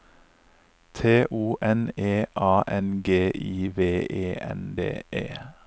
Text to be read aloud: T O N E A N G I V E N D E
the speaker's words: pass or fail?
pass